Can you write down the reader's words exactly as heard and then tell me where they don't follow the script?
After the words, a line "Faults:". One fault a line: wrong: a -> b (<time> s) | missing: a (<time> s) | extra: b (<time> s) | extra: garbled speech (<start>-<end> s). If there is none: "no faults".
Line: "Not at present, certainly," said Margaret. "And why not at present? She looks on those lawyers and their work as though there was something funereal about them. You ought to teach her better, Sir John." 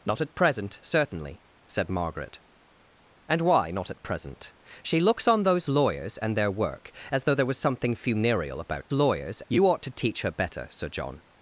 "Not at present, certainly," said Margaret. "And why not at present? She looks on those lawyers and their work as though there was something funereal about lawyers. You ought to teach her better, Sir John."
Faults:
wrong: them -> lawyers (8.9 s)